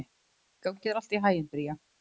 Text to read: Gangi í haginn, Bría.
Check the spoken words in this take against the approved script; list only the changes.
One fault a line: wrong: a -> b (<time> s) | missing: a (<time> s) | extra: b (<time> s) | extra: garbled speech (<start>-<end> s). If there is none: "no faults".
extra: þér allt (0.9 s)